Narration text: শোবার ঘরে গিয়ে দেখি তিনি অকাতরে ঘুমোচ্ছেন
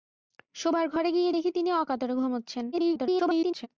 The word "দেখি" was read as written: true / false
true